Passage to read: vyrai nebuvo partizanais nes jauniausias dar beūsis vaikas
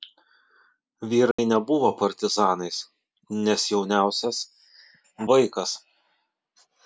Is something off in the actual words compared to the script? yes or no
yes